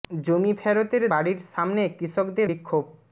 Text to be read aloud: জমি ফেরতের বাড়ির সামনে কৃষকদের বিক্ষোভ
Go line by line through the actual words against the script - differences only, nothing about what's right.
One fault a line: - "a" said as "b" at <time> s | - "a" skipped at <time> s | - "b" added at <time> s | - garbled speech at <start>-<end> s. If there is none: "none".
none